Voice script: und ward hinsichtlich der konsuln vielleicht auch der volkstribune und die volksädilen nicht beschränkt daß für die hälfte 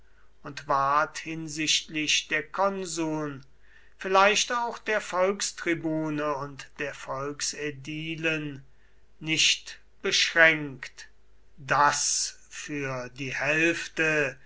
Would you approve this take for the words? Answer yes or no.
no